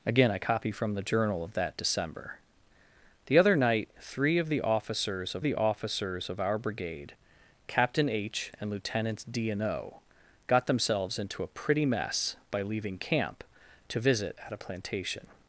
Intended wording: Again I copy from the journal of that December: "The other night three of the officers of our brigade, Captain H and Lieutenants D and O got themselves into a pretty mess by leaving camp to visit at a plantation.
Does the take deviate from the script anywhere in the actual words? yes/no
yes